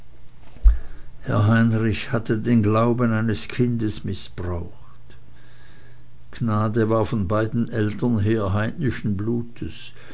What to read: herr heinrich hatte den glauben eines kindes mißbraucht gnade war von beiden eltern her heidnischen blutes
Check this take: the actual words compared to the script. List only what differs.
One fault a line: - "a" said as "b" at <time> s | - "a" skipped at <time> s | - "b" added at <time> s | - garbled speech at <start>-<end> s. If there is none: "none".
none